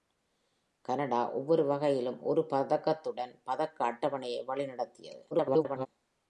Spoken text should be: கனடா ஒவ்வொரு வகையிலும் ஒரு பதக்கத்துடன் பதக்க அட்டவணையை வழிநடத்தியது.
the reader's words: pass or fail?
fail